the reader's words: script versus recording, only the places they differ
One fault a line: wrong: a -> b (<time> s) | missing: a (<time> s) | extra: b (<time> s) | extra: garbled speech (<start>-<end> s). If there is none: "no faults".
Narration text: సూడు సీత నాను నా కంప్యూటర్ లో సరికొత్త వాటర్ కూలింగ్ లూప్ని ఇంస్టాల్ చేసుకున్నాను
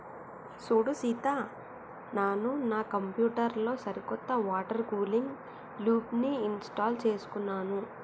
no faults